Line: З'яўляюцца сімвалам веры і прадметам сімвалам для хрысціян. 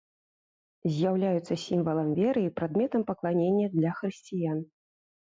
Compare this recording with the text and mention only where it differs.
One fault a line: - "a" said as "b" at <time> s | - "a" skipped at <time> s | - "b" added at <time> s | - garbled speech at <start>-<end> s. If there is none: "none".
- "сімвалам" said as "пакланення" at 3.1 s